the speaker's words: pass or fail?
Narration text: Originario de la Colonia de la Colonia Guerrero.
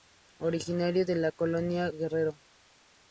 fail